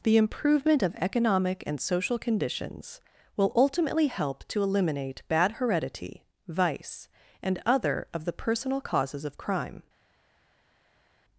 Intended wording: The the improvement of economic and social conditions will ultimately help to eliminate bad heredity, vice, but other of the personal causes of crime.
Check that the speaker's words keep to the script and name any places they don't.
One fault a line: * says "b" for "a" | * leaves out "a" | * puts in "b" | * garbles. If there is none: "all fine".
* leaves out "the"
* says "and" for "but"